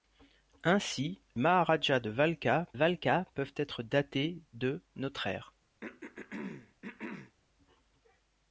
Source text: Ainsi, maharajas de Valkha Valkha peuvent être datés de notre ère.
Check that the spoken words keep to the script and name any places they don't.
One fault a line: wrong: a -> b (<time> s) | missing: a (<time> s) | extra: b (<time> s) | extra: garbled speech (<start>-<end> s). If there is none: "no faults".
no faults